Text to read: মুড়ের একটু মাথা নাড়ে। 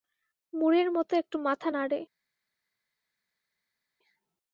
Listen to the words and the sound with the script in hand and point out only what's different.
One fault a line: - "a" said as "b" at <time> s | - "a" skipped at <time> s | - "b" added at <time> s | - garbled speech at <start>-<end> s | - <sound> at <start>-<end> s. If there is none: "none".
- "মতো" added at 0.9 s